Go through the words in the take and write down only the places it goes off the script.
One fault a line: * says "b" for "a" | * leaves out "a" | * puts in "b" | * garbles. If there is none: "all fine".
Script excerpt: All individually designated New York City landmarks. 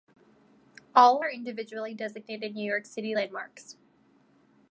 * puts in "are"